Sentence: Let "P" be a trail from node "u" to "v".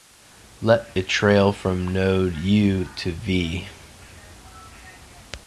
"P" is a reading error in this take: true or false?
true